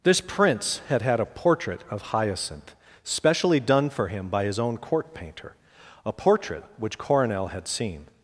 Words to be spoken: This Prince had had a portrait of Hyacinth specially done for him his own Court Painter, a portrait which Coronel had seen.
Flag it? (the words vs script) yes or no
yes